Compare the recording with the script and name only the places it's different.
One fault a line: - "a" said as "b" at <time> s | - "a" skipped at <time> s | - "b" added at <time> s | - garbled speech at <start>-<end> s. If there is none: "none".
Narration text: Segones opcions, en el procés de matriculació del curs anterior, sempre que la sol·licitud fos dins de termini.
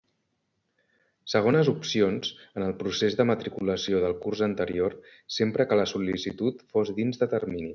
none